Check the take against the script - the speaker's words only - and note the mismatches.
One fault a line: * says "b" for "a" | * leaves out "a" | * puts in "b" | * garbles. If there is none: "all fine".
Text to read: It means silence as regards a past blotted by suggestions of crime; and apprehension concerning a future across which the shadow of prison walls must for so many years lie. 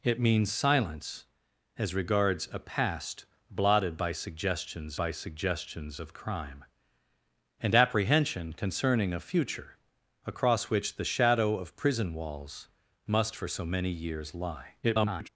* puts in "by suggestions"
* garbles